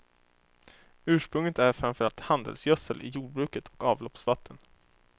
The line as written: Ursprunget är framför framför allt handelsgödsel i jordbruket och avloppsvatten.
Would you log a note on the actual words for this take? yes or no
yes